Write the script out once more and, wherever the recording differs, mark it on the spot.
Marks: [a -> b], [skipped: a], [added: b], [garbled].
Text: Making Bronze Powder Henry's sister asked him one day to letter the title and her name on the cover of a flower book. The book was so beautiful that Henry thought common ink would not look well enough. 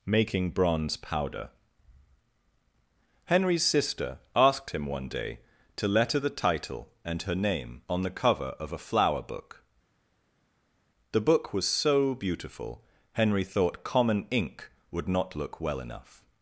Making Bronze Powder Henry's sister asked him one day to letter the title and her name on the cover of a flower book. The book was so beautiful [skipped: that] Henry thought common ink would not look well enough.